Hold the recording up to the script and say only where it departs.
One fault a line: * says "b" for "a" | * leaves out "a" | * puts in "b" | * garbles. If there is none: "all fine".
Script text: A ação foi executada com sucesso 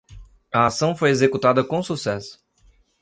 all fine